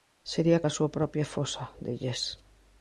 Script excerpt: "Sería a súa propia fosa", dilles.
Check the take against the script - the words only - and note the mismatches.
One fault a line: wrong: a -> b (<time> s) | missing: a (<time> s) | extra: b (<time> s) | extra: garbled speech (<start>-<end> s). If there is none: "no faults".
no faults